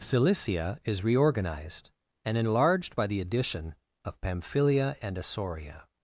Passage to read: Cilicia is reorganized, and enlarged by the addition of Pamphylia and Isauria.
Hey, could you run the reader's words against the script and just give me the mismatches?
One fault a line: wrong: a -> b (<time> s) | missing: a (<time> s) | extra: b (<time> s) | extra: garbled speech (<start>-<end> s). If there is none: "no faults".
no faults